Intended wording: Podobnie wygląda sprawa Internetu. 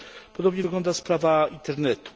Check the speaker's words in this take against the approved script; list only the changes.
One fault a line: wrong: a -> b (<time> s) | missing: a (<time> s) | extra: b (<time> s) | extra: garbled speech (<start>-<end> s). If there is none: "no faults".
no faults